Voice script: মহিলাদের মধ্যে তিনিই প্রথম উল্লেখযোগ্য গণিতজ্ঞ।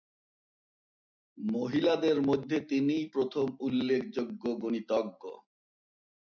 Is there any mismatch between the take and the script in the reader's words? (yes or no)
no